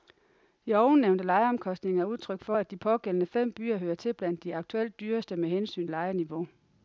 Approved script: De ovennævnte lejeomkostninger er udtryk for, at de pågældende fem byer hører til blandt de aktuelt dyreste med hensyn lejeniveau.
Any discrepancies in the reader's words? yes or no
no